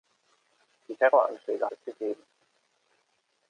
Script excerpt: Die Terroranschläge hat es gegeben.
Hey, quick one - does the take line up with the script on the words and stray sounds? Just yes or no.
no